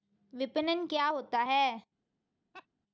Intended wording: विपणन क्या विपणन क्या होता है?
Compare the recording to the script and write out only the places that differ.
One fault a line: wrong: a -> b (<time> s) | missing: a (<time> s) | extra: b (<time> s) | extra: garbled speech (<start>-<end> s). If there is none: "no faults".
missing: विपणन क्या (1.1 s)